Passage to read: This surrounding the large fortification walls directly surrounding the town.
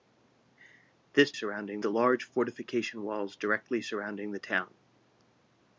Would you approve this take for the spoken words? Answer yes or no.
yes